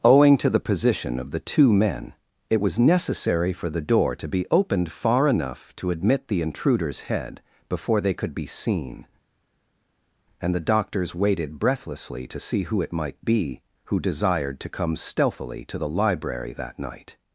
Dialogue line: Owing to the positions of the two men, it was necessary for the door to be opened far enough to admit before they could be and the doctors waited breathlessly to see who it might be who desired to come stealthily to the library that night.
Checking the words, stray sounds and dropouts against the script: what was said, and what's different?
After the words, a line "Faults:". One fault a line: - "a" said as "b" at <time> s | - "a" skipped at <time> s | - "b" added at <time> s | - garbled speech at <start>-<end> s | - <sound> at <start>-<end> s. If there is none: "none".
Owing to the position of the two men, it was necessary for the door to be opened far enough to admit the intruder's head before they could be seen, and the doctors waited breathlessly to see who it might be who desired to come stealthily to the library that night.
Faults:
- "positions" said as "position" at 0.6 s
- "the intruder's head" added at 6.3 s
- "seen" added at 8.5 s